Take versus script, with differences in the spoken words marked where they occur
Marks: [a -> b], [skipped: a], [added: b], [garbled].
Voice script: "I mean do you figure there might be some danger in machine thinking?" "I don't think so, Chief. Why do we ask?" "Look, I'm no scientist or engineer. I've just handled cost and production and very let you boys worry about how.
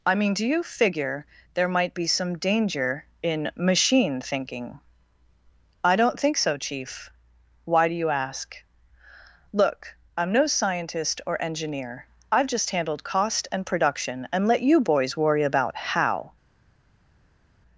"I mean do you figure there might be some danger in machine thinking?" "I don't think so, Chief. Why do [we -> you] ask?" "Look, I'm no scientist or engineer. I've just handled cost and production and [skipped: very] let you boys worry about how.